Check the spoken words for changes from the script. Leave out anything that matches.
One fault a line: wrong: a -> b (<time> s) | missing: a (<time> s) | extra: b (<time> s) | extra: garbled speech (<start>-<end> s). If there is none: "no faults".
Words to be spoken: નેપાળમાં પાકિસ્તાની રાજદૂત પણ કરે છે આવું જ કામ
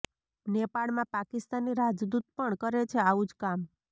no faults